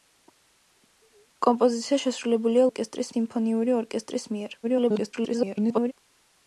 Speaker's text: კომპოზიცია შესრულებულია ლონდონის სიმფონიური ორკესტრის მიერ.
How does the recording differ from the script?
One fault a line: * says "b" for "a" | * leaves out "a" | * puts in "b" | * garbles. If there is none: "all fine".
* says "ორკესტრის" for "ლონდონის"
* garbles